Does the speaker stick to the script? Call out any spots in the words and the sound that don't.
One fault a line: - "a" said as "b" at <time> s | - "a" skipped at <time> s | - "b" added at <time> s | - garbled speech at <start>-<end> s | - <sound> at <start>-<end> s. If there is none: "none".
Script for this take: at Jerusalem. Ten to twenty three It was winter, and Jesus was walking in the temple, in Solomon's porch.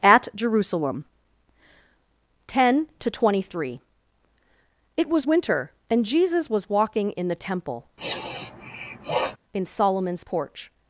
- sniff at 8.0-9.4 s